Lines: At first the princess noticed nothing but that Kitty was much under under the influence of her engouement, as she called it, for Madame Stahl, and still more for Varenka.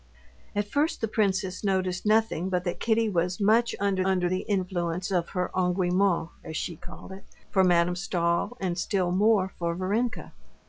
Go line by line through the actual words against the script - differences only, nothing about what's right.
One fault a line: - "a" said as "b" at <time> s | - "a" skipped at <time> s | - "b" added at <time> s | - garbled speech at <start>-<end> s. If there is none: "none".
none